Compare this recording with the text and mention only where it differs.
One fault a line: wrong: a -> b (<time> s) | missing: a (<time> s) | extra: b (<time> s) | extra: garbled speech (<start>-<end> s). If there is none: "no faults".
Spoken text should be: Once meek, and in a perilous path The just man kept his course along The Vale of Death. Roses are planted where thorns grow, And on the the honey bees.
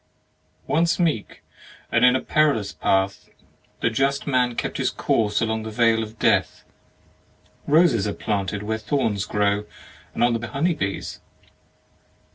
no faults